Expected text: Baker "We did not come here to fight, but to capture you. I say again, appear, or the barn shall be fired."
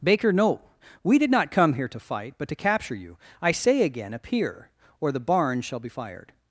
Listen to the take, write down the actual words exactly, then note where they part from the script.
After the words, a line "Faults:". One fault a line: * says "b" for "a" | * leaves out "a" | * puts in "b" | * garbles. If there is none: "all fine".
Baker no "We did not come here to fight, but to capture you. I say again, appear, or the barn shall be fired."
Faults:
* puts in "no"